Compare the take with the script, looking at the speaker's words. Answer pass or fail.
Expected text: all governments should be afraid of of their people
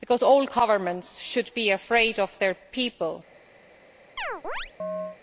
fail